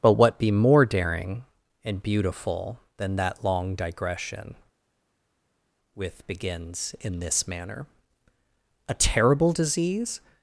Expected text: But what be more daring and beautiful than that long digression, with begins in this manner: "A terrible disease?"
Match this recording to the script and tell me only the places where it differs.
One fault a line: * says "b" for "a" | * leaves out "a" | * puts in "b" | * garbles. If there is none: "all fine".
all fine